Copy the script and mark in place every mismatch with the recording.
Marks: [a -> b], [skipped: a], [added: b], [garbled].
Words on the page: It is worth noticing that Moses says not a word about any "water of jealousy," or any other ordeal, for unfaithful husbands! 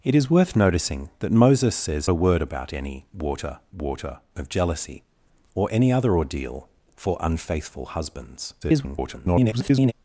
It is worth noticing that Moses says [skipped: not] a word about any "water [added: water] of jealousy," or any other ordeal, for unfaithful husbands! [garbled]